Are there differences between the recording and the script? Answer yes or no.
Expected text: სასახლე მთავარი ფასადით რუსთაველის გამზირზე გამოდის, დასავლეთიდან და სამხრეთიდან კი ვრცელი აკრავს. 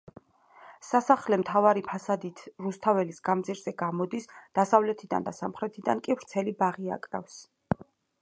yes